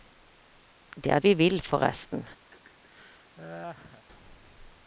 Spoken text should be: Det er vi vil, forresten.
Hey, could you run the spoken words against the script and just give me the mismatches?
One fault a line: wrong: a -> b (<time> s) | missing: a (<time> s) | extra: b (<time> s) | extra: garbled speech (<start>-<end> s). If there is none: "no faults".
no faults